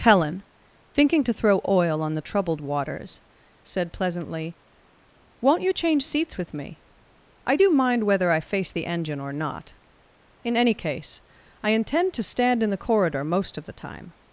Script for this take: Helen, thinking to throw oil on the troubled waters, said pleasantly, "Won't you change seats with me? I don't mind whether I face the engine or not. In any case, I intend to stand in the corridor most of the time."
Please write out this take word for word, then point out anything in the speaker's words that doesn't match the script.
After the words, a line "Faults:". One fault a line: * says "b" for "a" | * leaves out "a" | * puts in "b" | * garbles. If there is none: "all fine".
Helen, thinking to throw oil on the troubled waters, said pleasantly, "Won't you change seats with me? I do mind whether I face the engine or not. In any case, I intend to stand in the corridor most of the time."
Faults:
* says "do" for "don't"